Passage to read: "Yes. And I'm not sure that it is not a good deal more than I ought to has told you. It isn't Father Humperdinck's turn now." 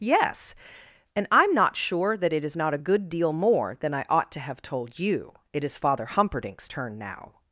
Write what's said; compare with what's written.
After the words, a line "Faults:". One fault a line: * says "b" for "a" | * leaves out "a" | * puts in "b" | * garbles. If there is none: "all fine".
"Yes. And I'm not sure that it is not a good deal more than I ought to have told you. It is Father Humperdinck's turn now."
Faults:
* says "have" for "has"
* says "is" for "isn't"